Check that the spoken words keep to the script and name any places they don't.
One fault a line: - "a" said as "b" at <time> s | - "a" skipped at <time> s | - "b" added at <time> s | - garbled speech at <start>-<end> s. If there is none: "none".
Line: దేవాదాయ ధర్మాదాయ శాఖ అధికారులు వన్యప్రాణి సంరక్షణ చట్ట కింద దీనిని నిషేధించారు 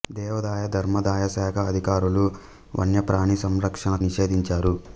- "చట్ట కింద దీనిని" skipped at 3.9 s